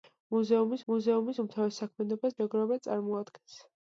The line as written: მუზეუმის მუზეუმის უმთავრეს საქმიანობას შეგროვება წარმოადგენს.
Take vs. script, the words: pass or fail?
pass